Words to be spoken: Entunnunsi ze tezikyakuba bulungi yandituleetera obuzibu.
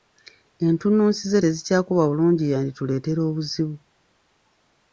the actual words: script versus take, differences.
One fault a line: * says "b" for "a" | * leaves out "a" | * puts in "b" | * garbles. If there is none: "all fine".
all fine